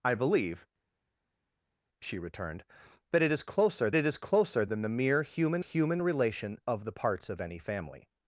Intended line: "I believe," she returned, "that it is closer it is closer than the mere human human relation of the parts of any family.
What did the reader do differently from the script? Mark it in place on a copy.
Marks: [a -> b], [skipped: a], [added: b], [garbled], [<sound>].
"I believe," she returned, "that it is closer it is closer than the mere human human relation of the parts of any family.